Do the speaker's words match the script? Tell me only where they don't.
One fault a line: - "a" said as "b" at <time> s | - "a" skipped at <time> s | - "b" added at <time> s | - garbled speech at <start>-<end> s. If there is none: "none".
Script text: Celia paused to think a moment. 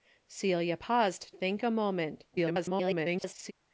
- "to" skipped at 1.4 s
- garbled speech at 2.3-3.5 s